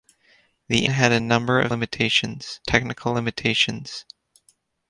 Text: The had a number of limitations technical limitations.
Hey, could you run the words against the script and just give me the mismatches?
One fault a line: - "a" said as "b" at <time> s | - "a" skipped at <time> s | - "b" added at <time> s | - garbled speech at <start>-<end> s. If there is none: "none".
none